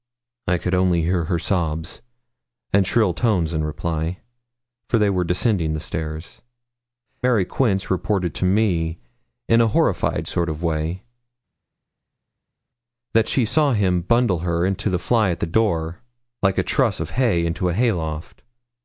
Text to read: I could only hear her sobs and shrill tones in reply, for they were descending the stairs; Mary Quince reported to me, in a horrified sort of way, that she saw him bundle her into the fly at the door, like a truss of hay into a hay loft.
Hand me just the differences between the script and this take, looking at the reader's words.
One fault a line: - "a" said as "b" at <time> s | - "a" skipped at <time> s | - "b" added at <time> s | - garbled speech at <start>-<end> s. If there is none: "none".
none